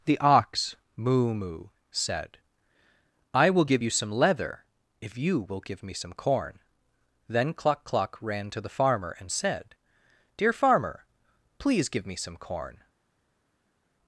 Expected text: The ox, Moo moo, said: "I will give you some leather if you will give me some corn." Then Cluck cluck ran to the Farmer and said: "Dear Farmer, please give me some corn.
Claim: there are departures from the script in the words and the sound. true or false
false